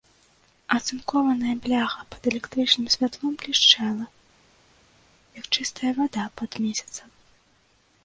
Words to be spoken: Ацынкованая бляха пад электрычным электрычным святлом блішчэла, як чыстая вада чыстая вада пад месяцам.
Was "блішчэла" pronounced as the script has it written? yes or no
yes